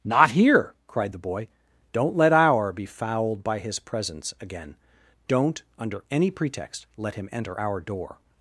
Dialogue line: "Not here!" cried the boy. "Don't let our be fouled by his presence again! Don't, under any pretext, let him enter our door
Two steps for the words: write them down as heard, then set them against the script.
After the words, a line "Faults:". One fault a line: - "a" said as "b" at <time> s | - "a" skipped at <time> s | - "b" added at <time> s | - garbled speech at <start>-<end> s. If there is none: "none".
"Not here!" cried the boy. "Don't let our be fouled by his presence again! Don't, under any pretext, let him enter our door
Faults:
none